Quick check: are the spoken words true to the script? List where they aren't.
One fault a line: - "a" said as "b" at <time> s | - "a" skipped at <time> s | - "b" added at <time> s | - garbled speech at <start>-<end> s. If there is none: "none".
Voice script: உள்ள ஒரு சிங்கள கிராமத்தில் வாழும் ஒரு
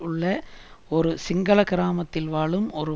none